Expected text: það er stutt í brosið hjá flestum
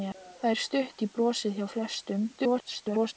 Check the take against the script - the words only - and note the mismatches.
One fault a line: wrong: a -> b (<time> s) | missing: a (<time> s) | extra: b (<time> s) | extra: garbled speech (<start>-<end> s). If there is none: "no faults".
extra: garbled speech (2.3-3.1 s)